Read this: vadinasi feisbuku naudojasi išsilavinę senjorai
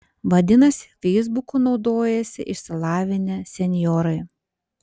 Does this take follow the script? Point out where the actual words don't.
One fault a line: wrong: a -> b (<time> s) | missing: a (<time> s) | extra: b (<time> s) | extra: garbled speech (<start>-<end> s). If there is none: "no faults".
no faults